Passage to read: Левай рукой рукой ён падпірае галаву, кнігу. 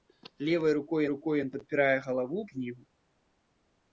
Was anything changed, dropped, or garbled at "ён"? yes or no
no